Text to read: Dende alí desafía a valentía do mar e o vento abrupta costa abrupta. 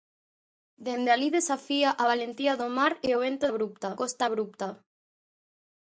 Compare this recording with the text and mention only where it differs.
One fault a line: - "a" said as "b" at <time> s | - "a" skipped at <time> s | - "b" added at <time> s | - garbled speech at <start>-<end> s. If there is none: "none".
none